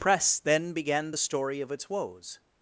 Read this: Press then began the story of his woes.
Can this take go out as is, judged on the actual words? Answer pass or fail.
fail